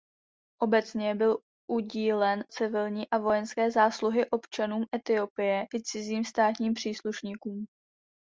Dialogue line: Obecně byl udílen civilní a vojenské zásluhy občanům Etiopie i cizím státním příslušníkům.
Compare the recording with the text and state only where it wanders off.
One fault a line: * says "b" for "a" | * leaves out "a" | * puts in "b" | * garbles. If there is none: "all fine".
all fine